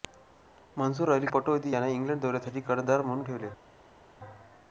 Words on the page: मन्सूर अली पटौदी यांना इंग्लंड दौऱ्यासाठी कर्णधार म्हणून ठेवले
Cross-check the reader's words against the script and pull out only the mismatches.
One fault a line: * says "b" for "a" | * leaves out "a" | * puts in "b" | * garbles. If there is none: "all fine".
all fine